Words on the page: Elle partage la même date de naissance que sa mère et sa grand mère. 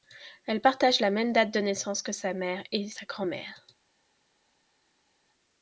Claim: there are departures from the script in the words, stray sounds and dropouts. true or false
false